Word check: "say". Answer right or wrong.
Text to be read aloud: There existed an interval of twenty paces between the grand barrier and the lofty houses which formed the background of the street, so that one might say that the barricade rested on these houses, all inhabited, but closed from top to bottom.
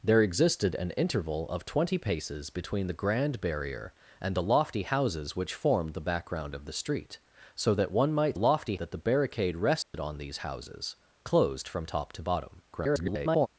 wrong